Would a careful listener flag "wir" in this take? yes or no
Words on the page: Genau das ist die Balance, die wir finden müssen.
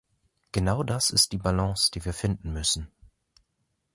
no